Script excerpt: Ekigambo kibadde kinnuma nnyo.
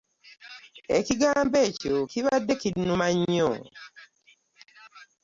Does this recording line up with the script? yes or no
no